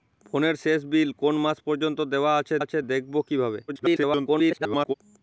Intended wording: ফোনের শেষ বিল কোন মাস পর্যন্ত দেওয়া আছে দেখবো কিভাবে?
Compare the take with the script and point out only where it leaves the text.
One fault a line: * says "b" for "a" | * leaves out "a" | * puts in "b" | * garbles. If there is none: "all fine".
* puts in "আছে"
* garbles